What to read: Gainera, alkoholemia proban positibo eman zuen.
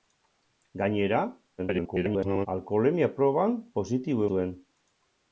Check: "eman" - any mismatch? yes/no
yes